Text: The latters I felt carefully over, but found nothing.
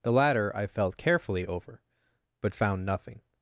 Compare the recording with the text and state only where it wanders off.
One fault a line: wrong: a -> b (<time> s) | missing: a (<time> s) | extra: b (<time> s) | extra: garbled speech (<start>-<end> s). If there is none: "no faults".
wrong: latters -> latter (0.1 s)